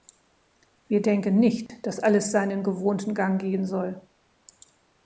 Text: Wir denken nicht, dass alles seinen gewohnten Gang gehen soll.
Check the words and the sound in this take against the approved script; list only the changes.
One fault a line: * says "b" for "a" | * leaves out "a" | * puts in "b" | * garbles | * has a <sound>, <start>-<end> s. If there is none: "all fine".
* has a dropout, 1.7-1.7 s